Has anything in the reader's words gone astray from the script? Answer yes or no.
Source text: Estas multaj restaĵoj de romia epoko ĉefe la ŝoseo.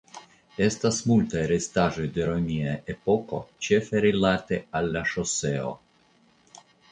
yes